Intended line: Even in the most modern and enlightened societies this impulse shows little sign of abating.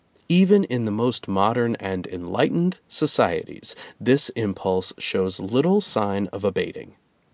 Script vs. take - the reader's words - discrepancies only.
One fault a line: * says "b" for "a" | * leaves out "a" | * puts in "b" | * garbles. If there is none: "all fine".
all fine